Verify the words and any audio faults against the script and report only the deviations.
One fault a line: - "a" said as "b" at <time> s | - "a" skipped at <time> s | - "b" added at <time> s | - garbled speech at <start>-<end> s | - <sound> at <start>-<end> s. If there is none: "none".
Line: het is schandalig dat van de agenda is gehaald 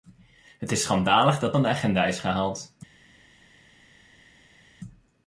none